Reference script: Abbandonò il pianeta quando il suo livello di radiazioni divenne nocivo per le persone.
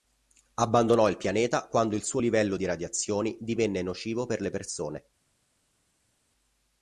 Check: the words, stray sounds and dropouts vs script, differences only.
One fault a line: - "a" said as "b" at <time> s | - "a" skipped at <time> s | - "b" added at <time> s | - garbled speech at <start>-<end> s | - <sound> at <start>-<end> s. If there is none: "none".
none